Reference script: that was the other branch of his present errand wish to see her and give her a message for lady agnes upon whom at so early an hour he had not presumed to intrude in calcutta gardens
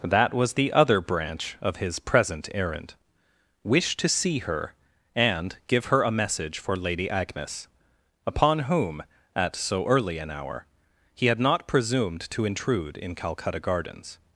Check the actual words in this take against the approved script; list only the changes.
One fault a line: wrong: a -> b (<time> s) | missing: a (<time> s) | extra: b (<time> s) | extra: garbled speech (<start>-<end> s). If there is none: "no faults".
no faults